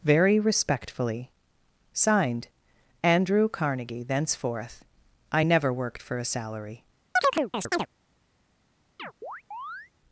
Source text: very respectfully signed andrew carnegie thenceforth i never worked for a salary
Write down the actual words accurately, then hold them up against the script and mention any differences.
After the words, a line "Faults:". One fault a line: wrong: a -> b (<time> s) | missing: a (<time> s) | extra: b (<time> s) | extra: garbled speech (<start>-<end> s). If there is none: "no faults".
very respectfully signed andrew carnegie thenceforth i never worked for a salary
Faults:
no faults